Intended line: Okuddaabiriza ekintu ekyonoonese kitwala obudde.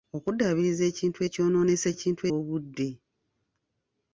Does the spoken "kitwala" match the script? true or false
false